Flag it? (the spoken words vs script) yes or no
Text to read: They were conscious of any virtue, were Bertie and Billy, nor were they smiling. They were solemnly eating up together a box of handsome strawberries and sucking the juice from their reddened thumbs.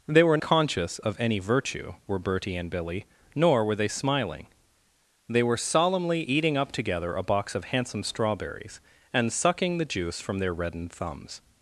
no